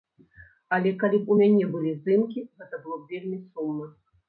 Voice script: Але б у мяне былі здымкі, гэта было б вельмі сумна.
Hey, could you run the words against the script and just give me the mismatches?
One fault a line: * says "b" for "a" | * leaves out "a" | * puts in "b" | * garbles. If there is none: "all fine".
* puts in "калі"